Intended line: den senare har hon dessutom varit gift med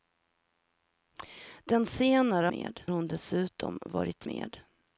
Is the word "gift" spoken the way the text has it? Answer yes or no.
no